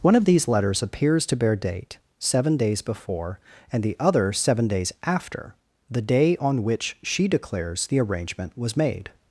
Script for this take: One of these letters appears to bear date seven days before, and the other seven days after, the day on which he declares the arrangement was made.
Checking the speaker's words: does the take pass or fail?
fail